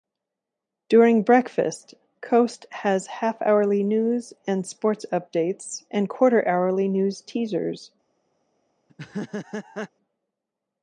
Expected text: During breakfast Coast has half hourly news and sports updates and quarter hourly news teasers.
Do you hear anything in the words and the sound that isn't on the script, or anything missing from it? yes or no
yes